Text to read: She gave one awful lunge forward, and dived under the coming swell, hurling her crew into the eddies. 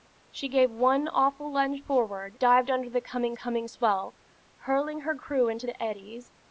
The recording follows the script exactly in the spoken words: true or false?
false